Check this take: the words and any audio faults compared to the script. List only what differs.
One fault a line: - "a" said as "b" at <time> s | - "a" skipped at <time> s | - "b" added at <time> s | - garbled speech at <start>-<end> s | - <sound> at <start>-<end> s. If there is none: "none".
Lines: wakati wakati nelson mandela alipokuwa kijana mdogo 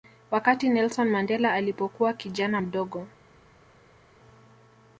- "wakati" skipped at 0.7 s